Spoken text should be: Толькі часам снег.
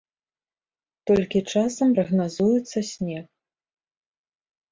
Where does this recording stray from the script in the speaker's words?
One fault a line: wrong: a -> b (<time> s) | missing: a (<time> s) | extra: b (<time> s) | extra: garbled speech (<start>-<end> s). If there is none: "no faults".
extra: прагназуецца (1.9 s)